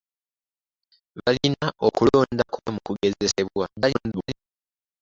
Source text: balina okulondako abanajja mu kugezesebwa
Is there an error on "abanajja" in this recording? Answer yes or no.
yes